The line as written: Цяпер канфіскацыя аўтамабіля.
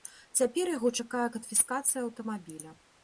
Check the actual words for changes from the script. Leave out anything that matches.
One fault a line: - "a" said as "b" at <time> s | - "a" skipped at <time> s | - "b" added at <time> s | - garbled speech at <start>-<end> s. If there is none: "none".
- "яго чакае" added at 0.8 s